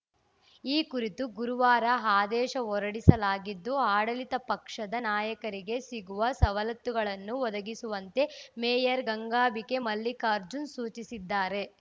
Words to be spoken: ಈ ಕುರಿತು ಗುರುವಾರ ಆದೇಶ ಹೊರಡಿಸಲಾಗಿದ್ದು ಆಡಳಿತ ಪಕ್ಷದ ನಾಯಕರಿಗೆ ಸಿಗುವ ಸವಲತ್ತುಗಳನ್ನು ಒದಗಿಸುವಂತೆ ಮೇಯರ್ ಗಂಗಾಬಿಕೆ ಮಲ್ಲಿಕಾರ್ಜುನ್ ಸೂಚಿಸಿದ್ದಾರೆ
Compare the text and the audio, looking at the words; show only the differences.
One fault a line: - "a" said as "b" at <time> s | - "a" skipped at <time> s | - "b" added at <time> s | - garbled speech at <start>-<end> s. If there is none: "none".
none